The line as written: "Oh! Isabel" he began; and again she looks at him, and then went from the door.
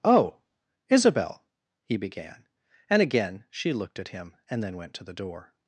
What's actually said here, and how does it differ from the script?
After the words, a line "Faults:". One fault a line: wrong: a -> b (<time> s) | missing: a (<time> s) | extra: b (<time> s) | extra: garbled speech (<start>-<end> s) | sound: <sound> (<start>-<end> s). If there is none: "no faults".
"Oh! Isabel" he began; and again she looked at him, and then went to the door.
Faults:
wrong: looks -> looked (3.7 s)
wrong: from -> to (4.9 s)